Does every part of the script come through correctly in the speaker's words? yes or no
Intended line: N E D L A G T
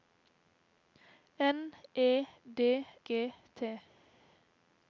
no